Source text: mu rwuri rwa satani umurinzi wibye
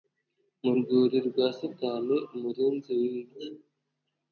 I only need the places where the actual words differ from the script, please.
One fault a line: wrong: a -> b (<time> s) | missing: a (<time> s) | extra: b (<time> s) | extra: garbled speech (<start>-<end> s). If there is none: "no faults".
no faults